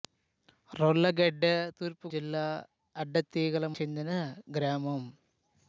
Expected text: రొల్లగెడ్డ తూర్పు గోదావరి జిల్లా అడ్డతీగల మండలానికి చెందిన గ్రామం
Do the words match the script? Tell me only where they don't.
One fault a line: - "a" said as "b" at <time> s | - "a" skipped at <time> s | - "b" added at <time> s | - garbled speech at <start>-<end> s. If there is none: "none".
- "గోదావరి" skipped at 2.1 s
- "మండలానికి" skipped at 3.7 s